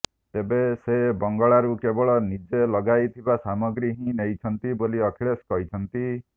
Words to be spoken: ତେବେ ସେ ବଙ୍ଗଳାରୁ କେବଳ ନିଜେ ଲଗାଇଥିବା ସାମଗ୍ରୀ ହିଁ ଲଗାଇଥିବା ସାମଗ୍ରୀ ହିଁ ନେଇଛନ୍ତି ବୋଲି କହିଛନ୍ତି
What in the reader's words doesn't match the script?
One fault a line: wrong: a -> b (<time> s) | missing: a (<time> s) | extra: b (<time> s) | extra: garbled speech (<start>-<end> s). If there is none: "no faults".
missing: ଲଗାଇଥିବା ସାମଗ୍ରୀ ହିଁ (4.2 s)
extra: ଅଖିଳେଶ (5.1 s)